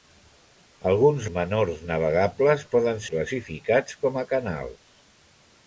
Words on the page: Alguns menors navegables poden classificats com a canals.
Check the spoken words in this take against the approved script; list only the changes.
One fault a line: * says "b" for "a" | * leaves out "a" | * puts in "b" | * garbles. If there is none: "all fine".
all fine